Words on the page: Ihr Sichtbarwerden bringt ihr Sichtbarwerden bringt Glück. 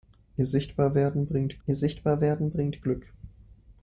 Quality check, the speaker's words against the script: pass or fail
pass